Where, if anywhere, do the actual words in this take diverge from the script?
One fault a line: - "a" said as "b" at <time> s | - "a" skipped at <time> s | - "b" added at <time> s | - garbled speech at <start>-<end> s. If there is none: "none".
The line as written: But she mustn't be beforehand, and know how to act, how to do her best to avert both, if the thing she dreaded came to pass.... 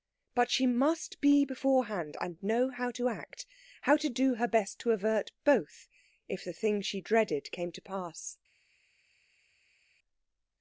- "mustn't" said as "must" at 0.7 s